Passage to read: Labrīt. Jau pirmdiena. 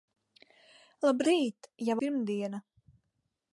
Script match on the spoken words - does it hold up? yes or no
yes